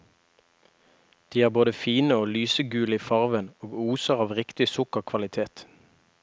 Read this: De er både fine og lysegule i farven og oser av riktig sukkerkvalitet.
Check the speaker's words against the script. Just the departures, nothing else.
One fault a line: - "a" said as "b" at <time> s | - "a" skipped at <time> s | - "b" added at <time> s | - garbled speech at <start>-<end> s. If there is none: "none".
none